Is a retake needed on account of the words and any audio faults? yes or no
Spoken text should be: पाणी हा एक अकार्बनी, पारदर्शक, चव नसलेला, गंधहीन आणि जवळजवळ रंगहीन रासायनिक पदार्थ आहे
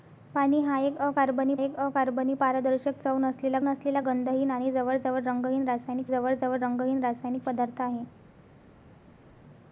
yes